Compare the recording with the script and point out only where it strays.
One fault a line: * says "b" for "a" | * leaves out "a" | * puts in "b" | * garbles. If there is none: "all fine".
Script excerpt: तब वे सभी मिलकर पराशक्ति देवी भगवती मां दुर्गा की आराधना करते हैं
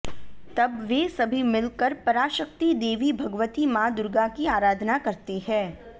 all fine